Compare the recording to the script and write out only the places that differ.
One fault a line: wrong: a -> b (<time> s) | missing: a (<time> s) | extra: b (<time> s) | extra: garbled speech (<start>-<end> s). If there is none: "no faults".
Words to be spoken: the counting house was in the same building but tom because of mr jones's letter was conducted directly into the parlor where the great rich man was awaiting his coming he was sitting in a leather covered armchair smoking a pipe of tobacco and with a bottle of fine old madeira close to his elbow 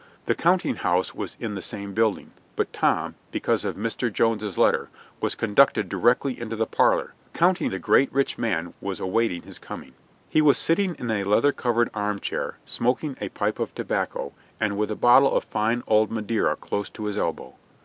wrong: where -> counting (7.3 s)